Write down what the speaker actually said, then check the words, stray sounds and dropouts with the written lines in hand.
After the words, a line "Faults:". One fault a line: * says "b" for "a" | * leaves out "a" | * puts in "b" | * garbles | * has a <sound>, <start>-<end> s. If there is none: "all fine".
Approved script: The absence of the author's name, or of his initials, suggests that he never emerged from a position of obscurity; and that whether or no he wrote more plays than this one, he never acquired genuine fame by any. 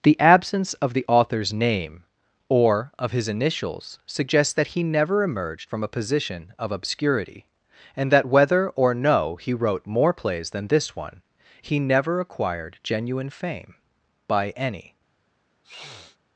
The absence of the author's name, or of his initials, suggests that he never emerged from a position of obscurity; and that whether or no he wrote more plays than this one, he never acquired genuine fame by any.
Faults:
* has a sniff, 15.6-16.2 s